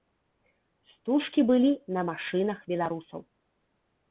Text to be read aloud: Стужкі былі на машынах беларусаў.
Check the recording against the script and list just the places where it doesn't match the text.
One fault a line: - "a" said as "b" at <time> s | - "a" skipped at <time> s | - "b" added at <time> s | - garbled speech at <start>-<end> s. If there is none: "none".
none